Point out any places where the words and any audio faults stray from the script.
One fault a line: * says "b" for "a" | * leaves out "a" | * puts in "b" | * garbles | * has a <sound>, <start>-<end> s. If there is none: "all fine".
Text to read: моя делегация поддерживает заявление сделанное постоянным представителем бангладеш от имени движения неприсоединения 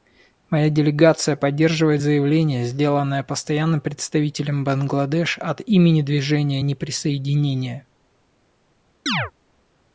* has a chirp, 9.1-9.3 s